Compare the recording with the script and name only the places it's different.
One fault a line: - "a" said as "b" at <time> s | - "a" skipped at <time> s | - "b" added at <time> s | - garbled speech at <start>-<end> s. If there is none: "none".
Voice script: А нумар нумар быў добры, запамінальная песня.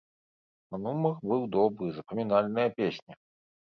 - "нумар" skipped at 1.1 s